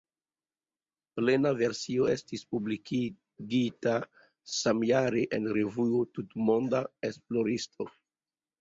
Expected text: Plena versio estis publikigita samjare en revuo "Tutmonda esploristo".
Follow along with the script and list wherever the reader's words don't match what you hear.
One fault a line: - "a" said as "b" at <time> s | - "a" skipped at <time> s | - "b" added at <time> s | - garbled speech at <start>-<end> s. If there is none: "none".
none